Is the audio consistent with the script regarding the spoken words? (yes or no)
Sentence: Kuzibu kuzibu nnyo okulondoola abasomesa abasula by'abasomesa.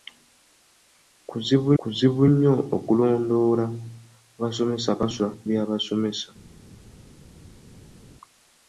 yes